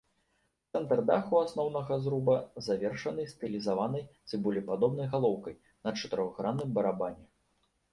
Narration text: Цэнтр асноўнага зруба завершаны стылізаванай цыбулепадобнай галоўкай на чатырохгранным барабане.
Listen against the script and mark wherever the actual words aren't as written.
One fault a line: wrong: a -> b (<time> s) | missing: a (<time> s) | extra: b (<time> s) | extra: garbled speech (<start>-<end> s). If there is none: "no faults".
extra: даху (1.1 s)